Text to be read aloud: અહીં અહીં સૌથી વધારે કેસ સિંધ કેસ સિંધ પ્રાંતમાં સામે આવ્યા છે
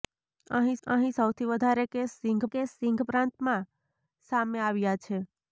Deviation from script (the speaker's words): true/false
false